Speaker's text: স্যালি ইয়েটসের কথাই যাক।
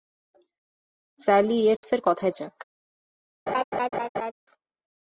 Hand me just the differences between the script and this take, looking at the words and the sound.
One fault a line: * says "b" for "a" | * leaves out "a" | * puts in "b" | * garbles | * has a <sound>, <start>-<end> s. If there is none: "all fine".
* has a dropout, 1.8-1.8 s
* has a laugh, 3.5-4.3 s